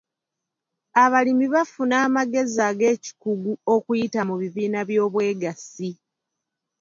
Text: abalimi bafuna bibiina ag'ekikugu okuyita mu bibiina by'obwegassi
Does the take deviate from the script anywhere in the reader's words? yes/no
yes